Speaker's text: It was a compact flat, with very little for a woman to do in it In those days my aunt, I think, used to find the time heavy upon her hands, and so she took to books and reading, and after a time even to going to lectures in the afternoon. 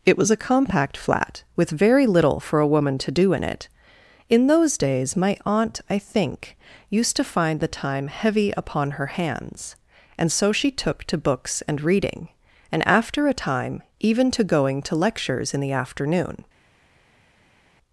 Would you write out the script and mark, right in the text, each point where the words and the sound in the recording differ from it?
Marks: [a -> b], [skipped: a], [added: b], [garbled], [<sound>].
It was a compact flat, with very little for a woman to do in it In those days my aunt, I think, used to find the time heavy upon her hands, and so she took to books and reading, and after a time even to going to lectures in the afternoon.